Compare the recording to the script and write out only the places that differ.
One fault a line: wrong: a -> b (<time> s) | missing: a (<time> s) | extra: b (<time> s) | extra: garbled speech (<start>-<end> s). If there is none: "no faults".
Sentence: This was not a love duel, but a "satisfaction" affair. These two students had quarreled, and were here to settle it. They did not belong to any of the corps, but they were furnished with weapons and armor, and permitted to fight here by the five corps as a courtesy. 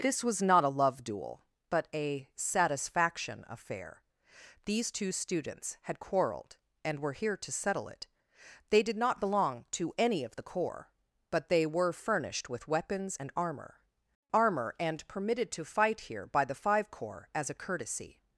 extra: armor (14.3 s)